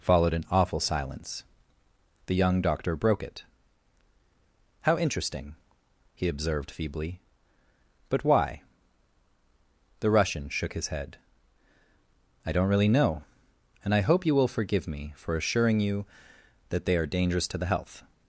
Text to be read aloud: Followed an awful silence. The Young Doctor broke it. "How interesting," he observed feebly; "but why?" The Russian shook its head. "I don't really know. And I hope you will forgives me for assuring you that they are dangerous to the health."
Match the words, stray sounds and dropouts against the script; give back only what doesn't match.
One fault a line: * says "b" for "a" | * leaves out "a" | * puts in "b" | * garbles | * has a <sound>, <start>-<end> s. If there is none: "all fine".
* says "his" for "its"
* says "forgive" for "forgives"